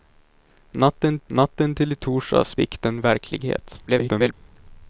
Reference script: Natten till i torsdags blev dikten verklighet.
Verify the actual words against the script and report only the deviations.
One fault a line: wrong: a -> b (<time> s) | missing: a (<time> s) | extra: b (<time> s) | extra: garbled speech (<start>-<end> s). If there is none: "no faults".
extra: natten (1.3 s)
missing: blev (2.6 s)
extra: garbled speech (3.9-4.3 s)